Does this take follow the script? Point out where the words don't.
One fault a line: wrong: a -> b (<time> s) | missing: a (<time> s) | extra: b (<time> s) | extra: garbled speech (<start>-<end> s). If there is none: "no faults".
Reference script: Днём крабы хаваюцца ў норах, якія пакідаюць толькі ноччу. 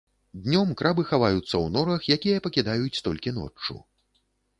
no faults